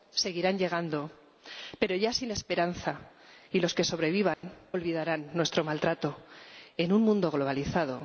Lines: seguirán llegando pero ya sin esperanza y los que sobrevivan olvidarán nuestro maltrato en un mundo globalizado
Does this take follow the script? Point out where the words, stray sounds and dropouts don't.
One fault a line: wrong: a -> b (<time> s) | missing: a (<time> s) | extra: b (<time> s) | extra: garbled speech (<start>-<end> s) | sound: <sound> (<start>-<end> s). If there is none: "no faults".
sound: dropout (4.3-4.4 s)